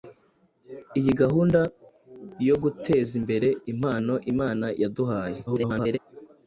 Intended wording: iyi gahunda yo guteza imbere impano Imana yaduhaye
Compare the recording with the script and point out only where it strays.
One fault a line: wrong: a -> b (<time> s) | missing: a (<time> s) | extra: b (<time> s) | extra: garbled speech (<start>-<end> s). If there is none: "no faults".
extra: garbled speech (5.5-6.0 s)